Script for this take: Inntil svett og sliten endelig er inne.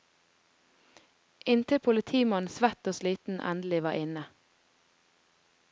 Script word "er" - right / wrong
wrong